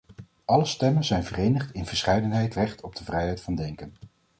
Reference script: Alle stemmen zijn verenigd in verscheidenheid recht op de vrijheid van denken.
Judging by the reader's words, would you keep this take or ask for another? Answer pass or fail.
pass